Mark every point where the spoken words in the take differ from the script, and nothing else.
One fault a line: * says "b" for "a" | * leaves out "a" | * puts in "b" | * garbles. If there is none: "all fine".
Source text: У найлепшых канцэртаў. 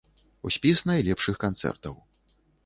* puts in "спіс"